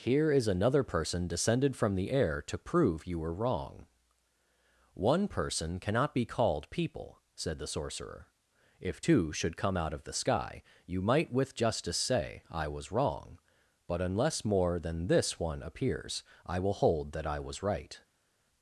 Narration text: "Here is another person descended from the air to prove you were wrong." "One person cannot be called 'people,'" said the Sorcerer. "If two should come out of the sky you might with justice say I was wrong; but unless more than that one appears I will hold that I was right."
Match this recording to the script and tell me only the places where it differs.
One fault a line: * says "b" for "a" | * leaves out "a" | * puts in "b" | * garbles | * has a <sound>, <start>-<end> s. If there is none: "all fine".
* says "this" for "that"